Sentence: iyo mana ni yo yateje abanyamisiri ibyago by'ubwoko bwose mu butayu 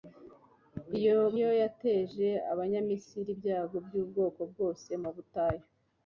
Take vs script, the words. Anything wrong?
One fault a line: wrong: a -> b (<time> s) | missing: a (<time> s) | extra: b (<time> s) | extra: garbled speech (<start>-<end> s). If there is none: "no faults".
missing: mana ni (1.2 s)